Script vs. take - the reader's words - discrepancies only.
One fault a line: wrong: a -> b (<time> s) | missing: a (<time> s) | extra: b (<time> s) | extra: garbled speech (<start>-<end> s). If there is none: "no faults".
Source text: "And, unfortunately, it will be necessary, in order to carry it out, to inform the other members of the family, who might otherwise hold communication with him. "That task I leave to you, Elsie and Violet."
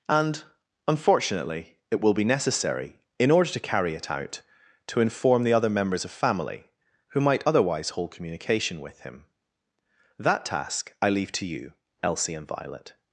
missing: the (6.1 s)